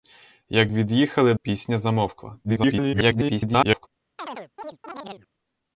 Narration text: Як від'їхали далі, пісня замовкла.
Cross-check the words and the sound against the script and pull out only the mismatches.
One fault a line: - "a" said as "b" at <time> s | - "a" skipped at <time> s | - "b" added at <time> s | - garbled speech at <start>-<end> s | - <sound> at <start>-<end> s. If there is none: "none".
- "далі" skipped at 1.3 s
- garbled speech at 2.4-3.9 s
- chirp at 4.2-5.3 s